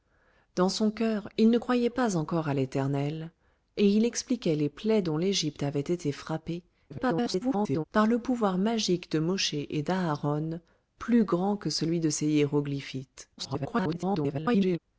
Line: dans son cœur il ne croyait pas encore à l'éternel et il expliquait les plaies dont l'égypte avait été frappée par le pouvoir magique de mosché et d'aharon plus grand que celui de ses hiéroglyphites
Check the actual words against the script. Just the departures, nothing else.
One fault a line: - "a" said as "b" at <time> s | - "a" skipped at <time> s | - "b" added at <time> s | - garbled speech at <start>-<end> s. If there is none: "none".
- garbled speech at 6.9-7.8 s
- garbled speech at 13.4-14.8 s